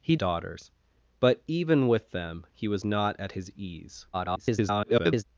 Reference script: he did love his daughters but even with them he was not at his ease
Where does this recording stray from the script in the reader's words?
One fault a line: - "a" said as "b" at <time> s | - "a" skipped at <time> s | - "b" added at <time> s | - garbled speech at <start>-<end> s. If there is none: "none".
- "did love his" skipped at 0.1 s
- garbled speech at 4.1-5.2 s